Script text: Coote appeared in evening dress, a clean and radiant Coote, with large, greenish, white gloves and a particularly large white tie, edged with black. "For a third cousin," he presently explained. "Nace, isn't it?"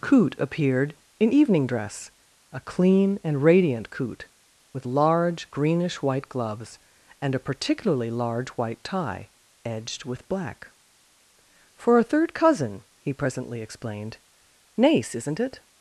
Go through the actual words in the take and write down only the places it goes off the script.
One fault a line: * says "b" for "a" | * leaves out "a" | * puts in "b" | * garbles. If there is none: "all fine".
all fine